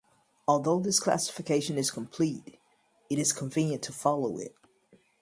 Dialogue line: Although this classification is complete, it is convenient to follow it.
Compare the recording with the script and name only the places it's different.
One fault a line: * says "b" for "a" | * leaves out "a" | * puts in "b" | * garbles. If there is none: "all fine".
all fine